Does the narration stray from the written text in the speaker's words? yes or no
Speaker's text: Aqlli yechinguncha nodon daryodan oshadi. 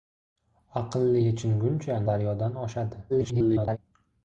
yes